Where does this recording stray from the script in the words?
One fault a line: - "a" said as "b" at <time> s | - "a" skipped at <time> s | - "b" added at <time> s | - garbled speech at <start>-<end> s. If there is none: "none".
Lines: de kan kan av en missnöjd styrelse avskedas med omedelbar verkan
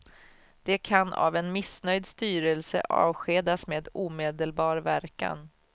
- "kan" skipped at 1.1 s